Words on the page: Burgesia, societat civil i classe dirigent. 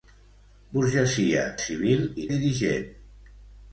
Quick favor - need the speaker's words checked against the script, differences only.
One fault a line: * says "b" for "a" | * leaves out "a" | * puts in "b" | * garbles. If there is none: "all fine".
* leaves out "societat"
* leaves out "classe"